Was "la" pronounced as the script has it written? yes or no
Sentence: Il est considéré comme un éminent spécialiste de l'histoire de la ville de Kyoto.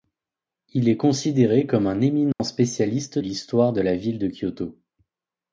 yes